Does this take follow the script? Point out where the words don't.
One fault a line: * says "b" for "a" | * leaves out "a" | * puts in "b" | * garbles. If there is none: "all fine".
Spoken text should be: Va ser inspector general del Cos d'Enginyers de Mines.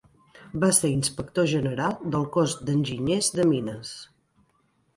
all fine